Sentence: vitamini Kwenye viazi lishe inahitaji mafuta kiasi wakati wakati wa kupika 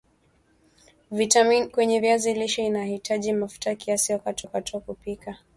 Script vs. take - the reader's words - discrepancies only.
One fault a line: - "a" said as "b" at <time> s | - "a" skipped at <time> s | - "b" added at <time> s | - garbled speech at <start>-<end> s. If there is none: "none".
none